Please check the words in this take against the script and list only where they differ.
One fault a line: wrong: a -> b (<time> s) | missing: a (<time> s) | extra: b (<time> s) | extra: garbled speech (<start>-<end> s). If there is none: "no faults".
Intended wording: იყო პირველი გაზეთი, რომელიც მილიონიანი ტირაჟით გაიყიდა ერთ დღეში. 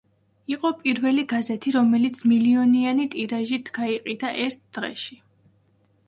no faults